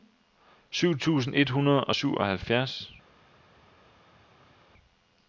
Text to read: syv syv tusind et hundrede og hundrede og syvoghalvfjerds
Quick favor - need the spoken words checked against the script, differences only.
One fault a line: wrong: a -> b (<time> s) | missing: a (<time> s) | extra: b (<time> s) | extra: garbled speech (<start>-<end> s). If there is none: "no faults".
missing: syv (1.0 s)
missing: hundrede og (1.9 s)